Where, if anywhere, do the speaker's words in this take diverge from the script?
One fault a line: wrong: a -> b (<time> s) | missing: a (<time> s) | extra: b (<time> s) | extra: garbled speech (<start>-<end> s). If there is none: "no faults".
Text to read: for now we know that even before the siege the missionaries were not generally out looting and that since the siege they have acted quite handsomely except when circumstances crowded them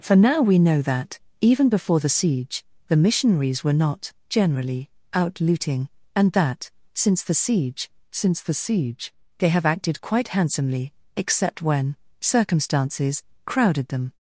extra: since the siege (8.1 s)